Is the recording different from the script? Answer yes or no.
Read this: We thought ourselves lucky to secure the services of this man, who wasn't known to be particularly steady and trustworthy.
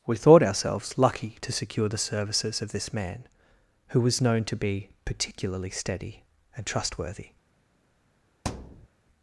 yes